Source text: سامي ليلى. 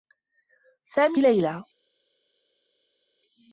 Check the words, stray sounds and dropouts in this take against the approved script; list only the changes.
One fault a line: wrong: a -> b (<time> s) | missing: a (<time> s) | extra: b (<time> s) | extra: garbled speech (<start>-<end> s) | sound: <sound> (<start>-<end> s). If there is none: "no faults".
no faults